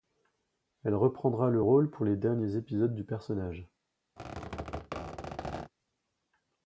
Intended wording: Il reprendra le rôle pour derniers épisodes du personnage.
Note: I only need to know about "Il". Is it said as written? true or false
false